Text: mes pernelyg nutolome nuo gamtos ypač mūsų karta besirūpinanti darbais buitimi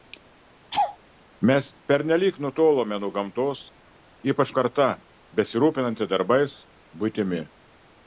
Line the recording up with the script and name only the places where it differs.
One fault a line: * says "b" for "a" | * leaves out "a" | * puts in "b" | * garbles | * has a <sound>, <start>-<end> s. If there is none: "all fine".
* has a laugh, 0.7-1.0 s
* leaves out "mūsų"